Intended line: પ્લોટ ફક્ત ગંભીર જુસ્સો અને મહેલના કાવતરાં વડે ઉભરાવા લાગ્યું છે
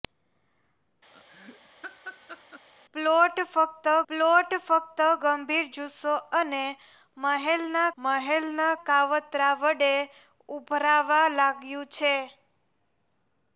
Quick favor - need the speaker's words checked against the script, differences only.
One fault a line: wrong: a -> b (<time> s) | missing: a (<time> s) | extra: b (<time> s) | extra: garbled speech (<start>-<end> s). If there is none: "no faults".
extra: પ્લોટ ફક્ત (4.1 s)
extra: મહેલના (8.0 s)